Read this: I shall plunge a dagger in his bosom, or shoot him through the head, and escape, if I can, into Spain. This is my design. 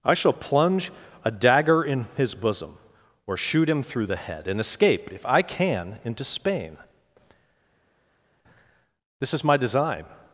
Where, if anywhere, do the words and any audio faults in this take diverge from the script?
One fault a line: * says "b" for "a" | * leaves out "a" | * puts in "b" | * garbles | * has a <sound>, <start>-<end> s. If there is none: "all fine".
all fine